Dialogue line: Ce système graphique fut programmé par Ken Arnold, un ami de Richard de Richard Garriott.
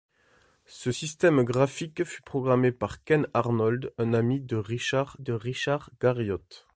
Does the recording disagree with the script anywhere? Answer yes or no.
no